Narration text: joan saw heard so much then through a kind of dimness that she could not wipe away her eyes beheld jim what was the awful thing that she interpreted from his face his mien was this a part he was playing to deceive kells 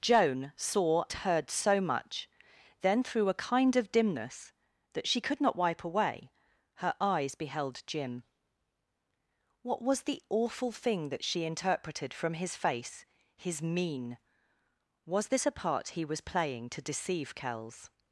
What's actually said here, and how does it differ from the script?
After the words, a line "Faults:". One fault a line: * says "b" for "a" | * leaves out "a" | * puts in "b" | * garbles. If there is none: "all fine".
joan saw heard so much then through a kind of dimness that she could not wipe away her eyes beheld jim what was the awful thing that she interpreted from his face his mien was this a part he was playing to deceive kells
Faults:
all fine